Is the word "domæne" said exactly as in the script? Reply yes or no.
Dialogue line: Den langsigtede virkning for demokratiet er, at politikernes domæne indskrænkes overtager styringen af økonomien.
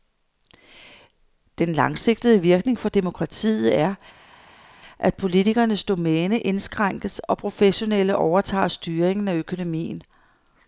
yes